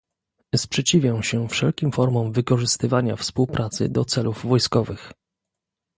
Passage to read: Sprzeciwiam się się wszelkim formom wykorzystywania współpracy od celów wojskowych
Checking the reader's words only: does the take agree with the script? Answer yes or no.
no